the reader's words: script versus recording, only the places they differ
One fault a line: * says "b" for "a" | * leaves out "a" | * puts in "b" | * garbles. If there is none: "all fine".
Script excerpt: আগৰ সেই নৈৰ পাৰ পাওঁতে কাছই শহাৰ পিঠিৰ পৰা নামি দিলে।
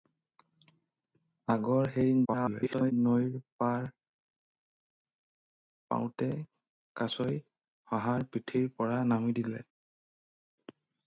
* garbles